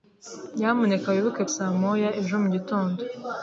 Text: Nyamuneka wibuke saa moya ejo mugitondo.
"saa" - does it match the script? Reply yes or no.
yes